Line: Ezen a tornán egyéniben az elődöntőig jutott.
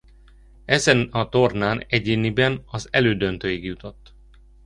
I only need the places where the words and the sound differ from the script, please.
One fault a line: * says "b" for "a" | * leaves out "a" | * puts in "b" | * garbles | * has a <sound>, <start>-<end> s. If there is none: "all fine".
all fine